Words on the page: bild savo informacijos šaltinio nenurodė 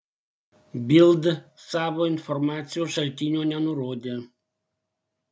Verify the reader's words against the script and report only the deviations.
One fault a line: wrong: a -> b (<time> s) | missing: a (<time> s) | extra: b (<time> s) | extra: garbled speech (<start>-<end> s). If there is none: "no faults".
no faults